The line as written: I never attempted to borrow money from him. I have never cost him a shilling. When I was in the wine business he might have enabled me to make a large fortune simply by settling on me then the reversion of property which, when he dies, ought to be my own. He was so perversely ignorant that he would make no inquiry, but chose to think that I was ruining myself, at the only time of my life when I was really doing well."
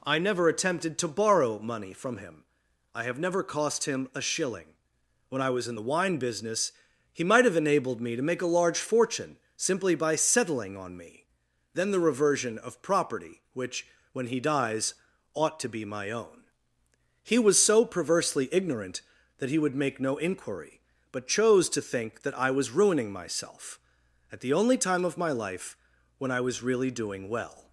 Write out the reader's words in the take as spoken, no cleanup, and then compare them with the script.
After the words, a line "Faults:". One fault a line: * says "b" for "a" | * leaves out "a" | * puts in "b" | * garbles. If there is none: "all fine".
I never attempted to borrow money from him. I have never cost him a shilling. When I was in the wine business he might have enabled me to make a large fortune simply by settling on me then the reversion of property which, when he dies, ought to be my own. He was so perversely ignorant that he would make no inquiry, but chose to think that I was ruining myself, at the only time of my life when I was really doing well."
Faults:
all fine